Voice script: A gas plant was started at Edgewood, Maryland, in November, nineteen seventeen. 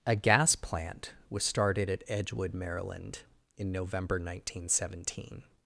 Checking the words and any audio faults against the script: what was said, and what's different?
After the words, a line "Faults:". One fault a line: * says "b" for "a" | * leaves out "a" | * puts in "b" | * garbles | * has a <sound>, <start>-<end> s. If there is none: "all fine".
A gas plant was started at Edgewood, Maryland, in November, nineteen seventeen.
Faults:
all fine